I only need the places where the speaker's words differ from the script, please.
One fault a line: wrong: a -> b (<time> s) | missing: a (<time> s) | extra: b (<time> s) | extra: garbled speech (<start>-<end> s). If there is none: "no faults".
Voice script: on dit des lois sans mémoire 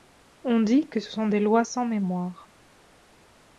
extra: que ce sont (0.9 s)